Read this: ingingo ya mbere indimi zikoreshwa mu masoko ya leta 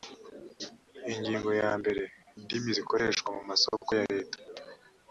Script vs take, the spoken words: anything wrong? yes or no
no